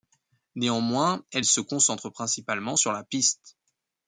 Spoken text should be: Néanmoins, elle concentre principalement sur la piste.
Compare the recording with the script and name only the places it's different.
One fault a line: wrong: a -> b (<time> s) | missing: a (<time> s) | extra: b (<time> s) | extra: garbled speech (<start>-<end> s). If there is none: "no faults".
extra: se (1.4 s)